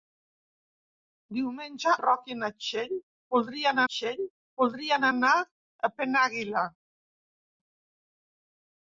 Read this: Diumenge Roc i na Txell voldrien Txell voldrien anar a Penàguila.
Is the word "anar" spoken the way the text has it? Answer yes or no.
yes